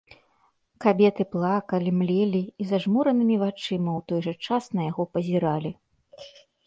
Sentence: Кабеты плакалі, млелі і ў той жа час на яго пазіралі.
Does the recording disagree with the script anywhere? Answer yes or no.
yes